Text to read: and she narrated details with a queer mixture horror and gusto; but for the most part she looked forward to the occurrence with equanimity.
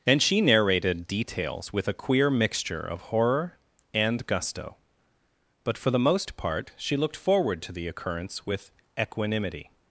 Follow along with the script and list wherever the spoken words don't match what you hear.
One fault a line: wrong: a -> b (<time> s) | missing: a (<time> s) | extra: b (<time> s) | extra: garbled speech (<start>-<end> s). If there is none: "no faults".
extra: of (2.8 s)